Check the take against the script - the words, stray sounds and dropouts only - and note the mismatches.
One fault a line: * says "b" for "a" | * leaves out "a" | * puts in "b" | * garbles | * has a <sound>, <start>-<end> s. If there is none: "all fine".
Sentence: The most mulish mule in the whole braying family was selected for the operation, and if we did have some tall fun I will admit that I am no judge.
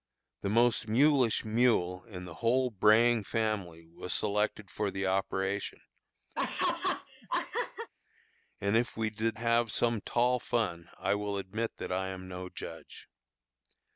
* has a laugh, 6.3-7.9 s